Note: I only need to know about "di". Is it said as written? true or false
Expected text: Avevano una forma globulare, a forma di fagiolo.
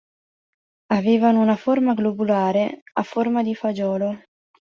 true